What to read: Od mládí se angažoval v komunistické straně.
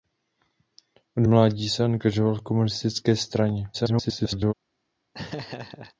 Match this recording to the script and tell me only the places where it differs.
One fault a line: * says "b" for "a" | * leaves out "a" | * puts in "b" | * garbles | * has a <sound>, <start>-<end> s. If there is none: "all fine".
* garbles
* has a laugh, 5.1-5.9 s